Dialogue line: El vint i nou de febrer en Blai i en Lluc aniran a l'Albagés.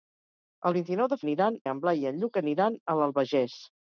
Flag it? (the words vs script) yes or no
yes